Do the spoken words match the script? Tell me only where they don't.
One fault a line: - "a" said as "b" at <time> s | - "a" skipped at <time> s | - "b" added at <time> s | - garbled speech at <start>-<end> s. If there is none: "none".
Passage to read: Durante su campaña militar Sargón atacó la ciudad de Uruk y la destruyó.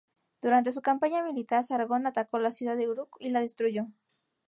none